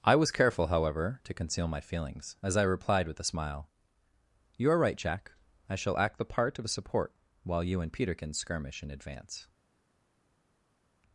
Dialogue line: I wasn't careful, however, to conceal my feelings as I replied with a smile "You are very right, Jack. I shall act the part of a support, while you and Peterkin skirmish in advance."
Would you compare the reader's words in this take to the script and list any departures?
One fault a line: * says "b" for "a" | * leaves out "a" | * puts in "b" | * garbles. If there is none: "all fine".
* says "was" for "wasn't"
* leaves out "very"